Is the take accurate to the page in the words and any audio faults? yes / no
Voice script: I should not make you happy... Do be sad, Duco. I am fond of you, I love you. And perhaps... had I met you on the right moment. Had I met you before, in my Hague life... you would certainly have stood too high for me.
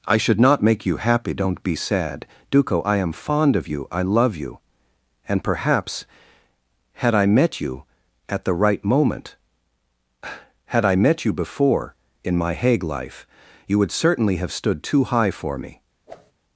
no